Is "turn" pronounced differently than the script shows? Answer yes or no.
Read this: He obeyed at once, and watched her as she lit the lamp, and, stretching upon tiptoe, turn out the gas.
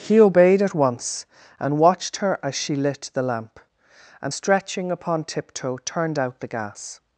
yes